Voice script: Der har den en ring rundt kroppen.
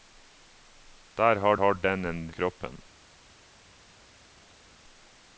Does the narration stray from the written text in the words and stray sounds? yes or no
yes